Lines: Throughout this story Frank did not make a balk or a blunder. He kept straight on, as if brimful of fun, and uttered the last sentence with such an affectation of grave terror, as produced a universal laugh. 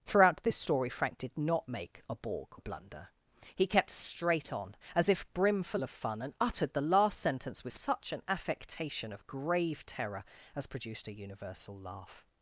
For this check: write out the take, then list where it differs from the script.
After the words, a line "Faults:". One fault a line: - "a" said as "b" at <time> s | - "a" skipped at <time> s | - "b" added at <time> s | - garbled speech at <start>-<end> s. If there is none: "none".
Throughout this story Frank did not make a balk a blunder. He kept straight on, as if brimful of fun, and uttered the last sentence with such an affectation of grave terror, as produced a universal laugh.
Faults:
- "or" skipped at 2.6 s